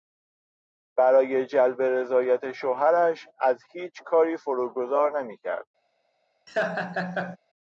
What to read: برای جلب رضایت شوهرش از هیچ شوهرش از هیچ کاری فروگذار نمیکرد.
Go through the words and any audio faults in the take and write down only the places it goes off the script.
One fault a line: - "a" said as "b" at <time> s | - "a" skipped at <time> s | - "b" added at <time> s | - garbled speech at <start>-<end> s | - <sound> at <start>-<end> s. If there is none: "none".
- "شوهرش از هیچ" skipped at 4.0 s
- laugh at 6.5-7.4 s